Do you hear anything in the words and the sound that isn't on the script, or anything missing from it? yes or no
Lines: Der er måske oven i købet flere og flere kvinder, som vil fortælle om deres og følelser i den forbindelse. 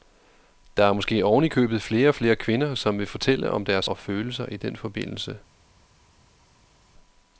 no